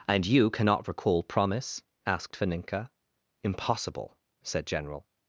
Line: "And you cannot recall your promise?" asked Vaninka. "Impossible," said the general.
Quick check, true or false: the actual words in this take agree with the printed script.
false